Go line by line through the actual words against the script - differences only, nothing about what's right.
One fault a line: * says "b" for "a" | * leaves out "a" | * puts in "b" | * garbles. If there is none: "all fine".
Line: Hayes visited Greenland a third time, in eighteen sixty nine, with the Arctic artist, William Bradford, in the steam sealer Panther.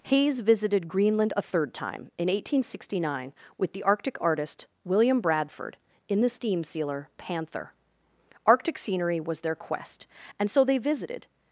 * puts in "Arctic scenery was their quest and so they visited"